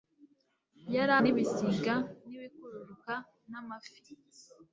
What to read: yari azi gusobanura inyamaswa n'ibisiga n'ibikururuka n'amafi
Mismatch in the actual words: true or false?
true